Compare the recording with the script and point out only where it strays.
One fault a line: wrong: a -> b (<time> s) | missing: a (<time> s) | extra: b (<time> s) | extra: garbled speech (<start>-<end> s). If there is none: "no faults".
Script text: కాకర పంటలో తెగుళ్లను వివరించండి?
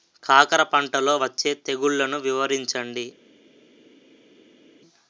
extra: వచ్చే (1.1 s)